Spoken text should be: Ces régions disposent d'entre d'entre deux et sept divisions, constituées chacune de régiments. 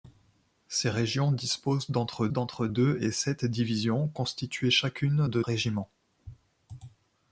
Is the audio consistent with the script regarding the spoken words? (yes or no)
yes